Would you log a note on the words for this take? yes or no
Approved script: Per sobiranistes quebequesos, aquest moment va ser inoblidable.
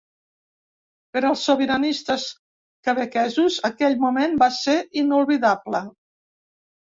yes